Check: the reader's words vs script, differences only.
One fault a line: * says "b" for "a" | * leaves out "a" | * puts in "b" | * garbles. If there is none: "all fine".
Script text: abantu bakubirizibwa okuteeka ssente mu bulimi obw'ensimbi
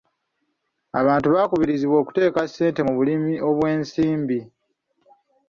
all fine